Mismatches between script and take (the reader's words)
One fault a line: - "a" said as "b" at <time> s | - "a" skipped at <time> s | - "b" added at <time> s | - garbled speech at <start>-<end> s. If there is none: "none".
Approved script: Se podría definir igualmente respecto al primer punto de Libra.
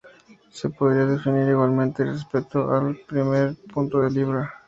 none